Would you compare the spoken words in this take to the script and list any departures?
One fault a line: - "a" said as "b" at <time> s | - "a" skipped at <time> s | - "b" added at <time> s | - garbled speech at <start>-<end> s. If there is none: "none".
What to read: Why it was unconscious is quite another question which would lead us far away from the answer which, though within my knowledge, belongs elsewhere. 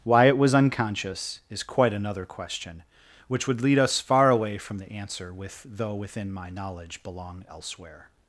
- "which" said as "with" at 5.3 s
- "belongs" said as "belong" at 7.0 s